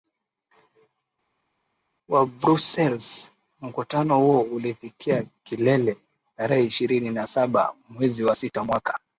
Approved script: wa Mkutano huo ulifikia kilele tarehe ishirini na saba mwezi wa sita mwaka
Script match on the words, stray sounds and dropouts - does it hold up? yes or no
no